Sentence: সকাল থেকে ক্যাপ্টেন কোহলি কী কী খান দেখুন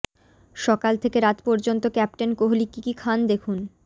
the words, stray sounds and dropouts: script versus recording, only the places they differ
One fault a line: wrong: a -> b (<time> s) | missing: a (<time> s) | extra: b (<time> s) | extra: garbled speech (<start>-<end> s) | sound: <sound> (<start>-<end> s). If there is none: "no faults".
extra: রাত পর্যন্ত (1.2 s)